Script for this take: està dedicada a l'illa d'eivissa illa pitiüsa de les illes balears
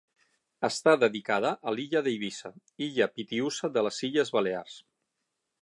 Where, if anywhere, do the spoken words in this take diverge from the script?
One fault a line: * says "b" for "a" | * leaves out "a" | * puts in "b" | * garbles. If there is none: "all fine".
all fine